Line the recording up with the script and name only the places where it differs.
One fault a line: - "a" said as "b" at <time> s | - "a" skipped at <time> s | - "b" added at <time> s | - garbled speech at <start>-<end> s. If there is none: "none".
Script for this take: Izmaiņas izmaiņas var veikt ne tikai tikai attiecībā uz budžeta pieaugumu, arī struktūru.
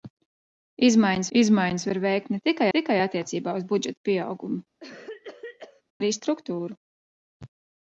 none